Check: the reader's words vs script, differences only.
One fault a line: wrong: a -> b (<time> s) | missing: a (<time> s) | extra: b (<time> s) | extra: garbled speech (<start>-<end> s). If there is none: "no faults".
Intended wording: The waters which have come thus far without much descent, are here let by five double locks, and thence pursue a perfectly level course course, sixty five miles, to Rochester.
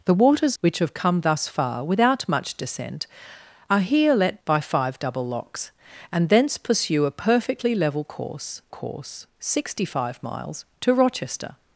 no faults